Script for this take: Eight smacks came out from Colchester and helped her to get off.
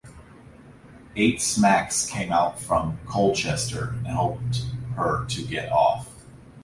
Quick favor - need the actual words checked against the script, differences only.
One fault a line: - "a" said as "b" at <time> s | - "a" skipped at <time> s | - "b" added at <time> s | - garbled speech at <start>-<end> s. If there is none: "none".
none